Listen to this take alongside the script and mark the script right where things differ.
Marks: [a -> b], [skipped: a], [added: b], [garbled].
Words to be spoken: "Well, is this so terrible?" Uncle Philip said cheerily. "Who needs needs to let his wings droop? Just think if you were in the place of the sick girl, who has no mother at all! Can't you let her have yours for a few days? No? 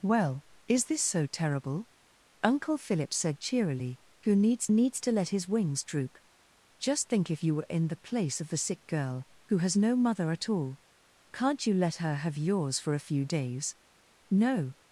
"Well, is this so terrible?" Uncle Philip said cheerily. "Who needs needs to let his wings droop? Just think if you were in the place of the sick girl, who has no mother at all! Can't you let her have yours for a few days? No?